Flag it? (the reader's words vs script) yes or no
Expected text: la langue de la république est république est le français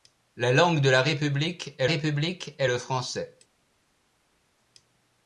no